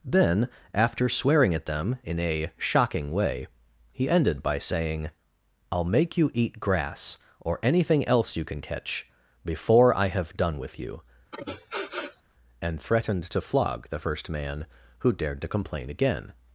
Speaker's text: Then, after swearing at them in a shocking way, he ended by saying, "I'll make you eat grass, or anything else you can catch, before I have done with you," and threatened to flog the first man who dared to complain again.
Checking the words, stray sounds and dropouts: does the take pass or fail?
fail